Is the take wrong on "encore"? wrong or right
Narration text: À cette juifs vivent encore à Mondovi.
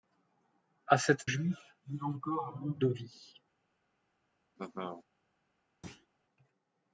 right